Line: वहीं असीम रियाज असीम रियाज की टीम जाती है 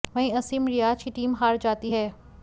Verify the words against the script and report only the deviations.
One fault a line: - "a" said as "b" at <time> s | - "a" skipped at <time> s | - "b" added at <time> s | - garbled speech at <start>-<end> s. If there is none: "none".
- "असीम रियाज" skipped at 1.0 s
- "हार" added at 1.3 s